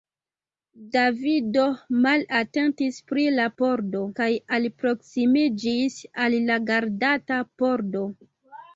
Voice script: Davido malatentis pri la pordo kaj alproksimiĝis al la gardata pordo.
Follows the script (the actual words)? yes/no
yes